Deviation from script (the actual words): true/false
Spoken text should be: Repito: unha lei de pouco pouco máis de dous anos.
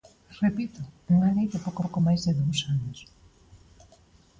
false